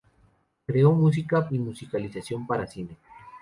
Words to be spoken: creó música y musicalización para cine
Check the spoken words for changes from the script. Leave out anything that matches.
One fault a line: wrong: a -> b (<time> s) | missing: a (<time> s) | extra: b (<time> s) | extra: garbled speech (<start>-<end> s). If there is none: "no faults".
no faults